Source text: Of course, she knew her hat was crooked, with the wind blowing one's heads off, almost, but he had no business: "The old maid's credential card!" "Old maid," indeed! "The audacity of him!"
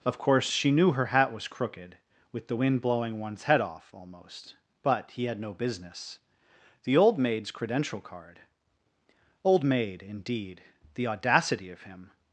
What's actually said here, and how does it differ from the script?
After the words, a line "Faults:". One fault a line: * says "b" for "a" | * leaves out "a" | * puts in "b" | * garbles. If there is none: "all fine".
Of course, she knew her hat was crooked, with the wind blowing one's head off, almost, but he had no business: "The old maid's credential card!" "Old maid," indeed! "The audacity of him!"
Faults:
* says "head" for "heads"